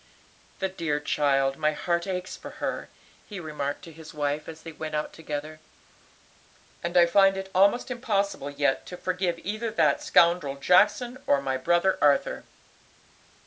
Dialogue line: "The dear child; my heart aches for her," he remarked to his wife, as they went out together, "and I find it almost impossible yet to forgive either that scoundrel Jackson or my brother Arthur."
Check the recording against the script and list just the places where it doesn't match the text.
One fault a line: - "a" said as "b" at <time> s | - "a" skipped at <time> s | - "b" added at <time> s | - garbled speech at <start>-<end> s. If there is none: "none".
none